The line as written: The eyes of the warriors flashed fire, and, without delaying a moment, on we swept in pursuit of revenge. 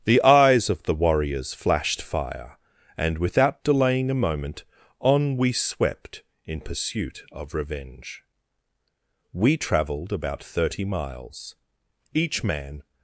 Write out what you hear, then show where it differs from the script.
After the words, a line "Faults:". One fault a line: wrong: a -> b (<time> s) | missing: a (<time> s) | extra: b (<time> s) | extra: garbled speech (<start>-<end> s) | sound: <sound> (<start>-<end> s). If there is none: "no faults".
The eyes of the warriors flashed fire, and, without delaying a moment, on we swept in pursuit of revenge. We travelled about thirty miles (each man
Faults:
extra: We travelled about thirty miles each man (9.3 s)